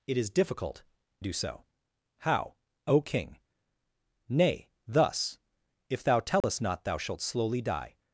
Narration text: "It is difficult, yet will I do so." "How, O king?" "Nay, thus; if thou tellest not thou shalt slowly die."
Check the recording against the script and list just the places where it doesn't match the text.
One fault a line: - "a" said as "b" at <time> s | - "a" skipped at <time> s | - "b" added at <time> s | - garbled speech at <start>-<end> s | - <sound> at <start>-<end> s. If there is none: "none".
- "yet will I" skipped at 0.8 s
- dropout at 6.4-6.4 s